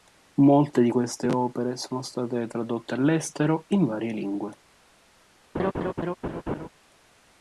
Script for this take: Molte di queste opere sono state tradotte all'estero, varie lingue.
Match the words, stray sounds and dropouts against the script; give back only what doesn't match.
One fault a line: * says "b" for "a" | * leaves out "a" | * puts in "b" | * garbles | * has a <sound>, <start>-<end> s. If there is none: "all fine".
* puts in "in"
* has a laugh, 5.5-6.7 s